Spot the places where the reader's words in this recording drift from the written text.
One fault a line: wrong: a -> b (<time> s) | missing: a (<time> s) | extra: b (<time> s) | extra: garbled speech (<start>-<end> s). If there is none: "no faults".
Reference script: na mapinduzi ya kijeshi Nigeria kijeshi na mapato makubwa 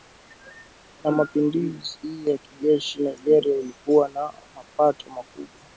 wrong: kijeshi -> ilikuwa (3.6 s)